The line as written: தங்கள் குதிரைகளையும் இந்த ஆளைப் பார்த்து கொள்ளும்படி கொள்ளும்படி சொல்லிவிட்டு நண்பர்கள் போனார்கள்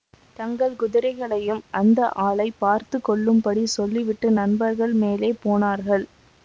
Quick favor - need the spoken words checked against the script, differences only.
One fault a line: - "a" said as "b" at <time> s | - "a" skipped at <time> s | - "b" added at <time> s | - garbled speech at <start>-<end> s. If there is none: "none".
- "இந்த" said as "அந்த" at 1.7 s
- "கொள்ளும்படி" skipped at 3.6 s
- "மேலே" added at 5.0 s